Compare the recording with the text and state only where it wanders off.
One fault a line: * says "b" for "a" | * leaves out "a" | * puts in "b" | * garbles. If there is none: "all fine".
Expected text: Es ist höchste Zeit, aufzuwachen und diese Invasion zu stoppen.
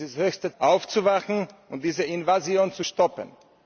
* leaves out "Zeit"